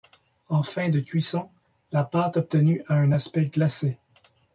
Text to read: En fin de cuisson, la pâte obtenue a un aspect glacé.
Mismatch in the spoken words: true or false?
false